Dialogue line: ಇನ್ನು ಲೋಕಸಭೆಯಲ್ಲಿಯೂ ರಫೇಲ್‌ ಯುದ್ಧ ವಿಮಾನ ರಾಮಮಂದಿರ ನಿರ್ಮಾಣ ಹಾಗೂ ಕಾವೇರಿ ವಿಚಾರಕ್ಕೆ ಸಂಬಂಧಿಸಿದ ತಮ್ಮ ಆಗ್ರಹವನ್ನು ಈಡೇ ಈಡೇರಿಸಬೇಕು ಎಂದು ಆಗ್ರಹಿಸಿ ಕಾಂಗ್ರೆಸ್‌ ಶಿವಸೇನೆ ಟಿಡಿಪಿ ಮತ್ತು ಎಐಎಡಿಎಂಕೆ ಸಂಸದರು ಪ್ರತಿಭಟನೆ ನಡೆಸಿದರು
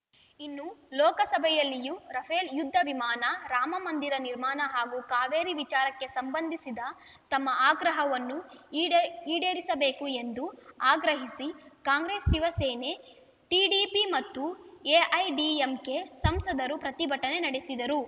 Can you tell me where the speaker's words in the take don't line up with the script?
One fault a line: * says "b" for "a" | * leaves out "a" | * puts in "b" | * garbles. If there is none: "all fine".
all fine